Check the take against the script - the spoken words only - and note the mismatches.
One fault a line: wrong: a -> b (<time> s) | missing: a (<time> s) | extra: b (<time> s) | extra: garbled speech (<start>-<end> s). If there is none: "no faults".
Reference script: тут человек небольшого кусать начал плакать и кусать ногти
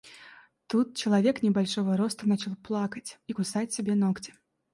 wrong: кусать -> роста (2.0 s)
extra: себе (3.7 s)